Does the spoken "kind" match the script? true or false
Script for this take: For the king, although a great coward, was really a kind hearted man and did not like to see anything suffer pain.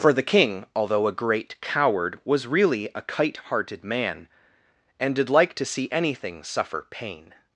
false